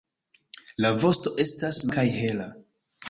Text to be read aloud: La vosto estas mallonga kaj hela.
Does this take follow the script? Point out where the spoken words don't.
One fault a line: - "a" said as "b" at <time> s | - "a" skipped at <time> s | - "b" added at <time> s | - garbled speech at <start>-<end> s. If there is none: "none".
- "mallonga" skipped at 1.9 s